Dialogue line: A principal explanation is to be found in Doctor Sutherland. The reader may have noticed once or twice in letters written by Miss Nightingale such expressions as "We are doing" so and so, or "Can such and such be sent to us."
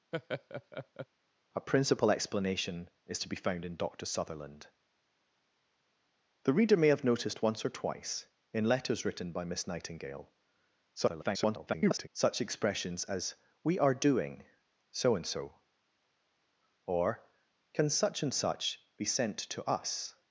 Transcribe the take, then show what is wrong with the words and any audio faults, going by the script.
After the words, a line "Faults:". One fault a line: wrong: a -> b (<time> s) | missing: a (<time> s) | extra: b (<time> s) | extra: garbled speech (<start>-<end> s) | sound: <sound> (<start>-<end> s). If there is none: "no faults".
A principal explanation is to be found in Doctor Sutherland. The reader may have noticed once or twice in letters written by Miss Nightingale [garbled] such expressions as "We are doing" so and so, or "Can such and such be sent to us."
Faults:
sound: laugh (0.1-1.1 s)
extra: garbled speech (10.9-12.1 s)